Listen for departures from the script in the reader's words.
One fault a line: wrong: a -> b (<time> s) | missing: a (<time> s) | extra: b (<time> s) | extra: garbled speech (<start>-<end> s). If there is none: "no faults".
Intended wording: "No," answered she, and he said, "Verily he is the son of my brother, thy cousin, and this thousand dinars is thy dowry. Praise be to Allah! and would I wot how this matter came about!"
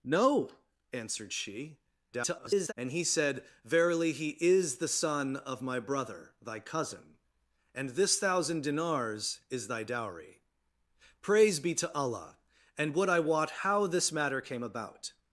extra: garbled speech (2.1-2.7 s)